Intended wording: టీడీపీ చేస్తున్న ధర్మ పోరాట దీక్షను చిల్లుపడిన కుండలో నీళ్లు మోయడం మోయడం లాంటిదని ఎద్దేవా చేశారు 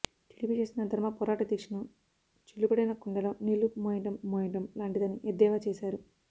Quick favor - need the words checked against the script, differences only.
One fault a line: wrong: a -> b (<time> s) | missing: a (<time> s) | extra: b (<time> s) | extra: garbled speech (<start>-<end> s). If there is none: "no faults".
no faults